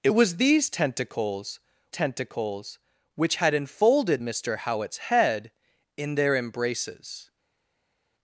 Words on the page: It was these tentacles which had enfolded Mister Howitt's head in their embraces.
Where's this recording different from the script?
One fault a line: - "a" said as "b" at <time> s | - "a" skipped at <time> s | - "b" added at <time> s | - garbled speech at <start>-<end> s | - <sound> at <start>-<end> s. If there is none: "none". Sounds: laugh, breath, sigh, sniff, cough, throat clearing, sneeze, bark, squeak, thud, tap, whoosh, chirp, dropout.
- "tentacles" added at 1.9 s